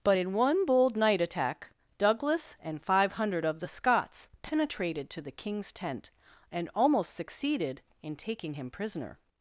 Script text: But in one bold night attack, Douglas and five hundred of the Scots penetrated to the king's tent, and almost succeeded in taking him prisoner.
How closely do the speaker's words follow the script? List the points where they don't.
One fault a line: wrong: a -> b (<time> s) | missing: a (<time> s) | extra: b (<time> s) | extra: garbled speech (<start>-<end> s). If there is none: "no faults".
no faults